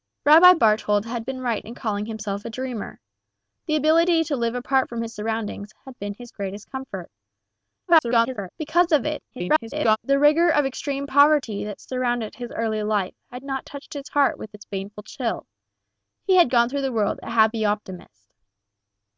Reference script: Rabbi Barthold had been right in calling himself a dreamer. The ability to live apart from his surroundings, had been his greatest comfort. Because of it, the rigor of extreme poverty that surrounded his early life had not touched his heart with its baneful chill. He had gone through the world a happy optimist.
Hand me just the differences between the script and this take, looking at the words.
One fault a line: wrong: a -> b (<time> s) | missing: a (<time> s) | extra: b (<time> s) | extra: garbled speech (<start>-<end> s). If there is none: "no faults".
extra: garbled speech (7.9-8.5 s)
extra: garbled speech (9.3-10.0 s)